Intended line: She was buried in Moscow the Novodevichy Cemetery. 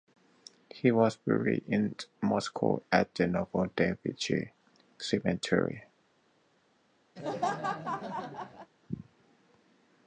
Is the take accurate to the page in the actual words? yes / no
no